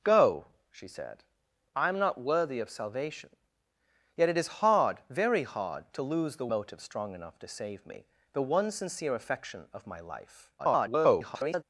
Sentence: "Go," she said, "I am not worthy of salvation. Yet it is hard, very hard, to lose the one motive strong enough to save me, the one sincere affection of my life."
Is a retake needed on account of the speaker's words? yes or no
yes